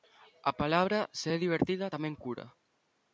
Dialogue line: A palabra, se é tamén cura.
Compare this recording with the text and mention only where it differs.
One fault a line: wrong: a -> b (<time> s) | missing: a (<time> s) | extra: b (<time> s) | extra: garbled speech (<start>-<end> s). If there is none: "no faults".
extra: divertida (1.4 s)